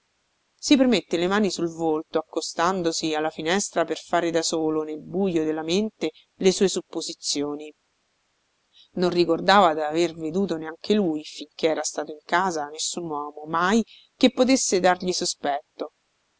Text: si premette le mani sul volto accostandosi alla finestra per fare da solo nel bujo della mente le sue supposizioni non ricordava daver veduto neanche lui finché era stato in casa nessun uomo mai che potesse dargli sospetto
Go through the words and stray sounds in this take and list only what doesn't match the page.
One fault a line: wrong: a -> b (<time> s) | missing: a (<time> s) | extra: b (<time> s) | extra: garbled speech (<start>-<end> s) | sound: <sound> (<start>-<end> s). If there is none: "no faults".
no faults